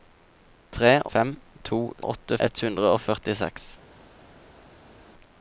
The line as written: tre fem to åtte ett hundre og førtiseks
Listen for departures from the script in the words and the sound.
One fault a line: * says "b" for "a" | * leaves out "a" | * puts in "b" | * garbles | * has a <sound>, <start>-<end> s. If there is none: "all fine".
all fine